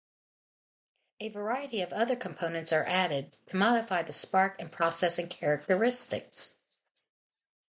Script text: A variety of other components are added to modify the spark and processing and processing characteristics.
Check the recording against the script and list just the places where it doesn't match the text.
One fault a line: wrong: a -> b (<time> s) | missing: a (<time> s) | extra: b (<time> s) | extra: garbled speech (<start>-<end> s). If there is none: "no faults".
missing: and processing (5.3 s)